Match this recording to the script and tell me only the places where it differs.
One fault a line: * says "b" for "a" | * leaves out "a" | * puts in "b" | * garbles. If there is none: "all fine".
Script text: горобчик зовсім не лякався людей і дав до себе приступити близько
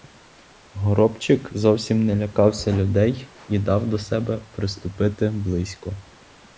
all fine